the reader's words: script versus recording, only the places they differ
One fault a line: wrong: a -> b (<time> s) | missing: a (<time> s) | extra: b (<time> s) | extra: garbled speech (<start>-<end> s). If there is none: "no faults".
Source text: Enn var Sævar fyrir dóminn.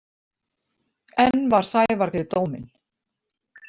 no faults